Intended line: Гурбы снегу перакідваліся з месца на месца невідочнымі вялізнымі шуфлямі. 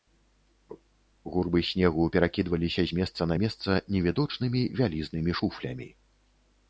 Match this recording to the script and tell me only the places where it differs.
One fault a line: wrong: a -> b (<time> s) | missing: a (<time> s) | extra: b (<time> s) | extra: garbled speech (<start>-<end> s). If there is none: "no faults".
no faults